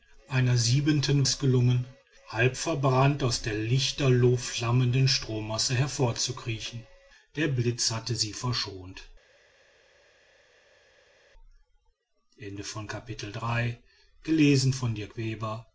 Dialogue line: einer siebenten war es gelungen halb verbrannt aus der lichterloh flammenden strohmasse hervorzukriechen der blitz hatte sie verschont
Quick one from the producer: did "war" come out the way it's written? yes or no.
no